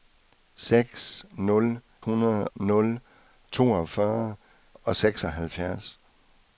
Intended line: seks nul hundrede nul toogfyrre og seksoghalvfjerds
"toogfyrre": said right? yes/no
yes